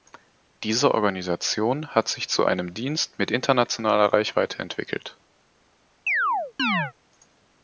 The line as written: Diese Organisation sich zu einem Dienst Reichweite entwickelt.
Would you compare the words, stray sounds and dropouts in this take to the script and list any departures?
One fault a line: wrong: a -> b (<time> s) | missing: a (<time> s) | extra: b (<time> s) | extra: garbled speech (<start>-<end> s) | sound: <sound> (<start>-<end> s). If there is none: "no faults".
extra: hat (1.9 s)
extra: mit internationaler (3.2 s)
sound: chirp (6.1-6.9 s)